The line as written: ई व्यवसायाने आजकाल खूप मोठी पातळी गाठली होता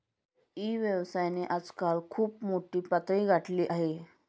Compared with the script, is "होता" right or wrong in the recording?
wrong